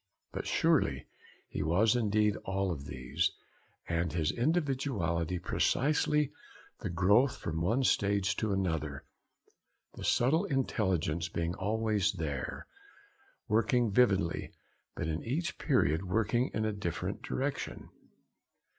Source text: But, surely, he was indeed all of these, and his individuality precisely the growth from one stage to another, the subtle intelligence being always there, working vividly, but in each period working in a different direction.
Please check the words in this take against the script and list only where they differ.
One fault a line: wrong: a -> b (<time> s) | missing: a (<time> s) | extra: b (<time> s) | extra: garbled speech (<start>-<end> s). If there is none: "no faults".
no faults